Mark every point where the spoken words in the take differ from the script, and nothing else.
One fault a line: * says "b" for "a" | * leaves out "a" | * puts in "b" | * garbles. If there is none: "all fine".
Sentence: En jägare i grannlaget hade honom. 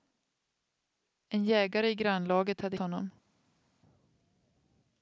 all fine